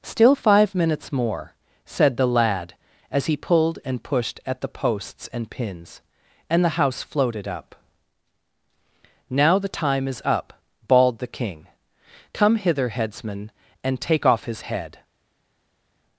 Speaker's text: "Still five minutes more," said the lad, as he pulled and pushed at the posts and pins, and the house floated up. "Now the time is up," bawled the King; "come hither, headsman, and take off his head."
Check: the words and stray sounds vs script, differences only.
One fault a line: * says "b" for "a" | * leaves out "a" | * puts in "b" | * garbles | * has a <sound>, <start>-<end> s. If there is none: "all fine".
all fine